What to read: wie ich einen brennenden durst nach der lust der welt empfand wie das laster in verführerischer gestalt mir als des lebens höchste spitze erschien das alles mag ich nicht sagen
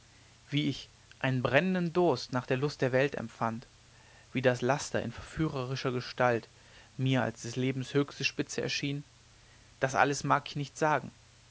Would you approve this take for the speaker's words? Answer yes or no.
yes